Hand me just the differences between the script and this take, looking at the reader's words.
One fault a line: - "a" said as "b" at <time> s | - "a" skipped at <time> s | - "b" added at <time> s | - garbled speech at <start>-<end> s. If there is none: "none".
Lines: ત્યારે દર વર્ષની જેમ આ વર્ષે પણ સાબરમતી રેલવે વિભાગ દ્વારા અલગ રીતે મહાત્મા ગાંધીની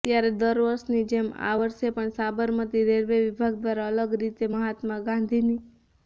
none